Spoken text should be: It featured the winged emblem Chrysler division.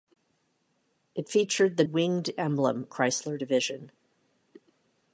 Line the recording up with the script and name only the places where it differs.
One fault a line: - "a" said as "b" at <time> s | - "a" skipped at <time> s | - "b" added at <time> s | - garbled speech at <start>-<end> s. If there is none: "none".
none